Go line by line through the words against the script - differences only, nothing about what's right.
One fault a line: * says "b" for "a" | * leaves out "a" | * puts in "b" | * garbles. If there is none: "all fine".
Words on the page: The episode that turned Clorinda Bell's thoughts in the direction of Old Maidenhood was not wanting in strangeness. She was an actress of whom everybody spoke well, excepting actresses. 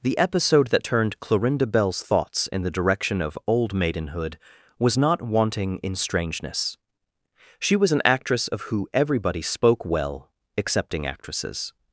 * says "who" for "whom"